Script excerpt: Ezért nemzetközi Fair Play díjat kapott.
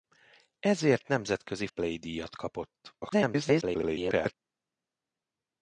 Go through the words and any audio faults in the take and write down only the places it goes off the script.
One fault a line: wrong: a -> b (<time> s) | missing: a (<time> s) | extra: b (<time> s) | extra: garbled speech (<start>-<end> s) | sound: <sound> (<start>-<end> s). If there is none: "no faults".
missing: Fair (1.7 s)
extra: garbled speech (3.0-4.3 s)